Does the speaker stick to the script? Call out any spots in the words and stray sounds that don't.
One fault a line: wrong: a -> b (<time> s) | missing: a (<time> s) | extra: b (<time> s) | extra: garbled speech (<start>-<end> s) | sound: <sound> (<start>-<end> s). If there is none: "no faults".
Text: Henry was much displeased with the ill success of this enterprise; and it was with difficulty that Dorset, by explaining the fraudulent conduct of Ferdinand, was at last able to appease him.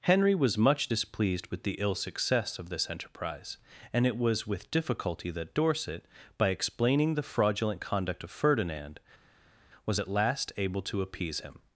no faults